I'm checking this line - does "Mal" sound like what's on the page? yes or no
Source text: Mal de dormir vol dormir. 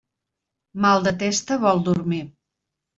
yes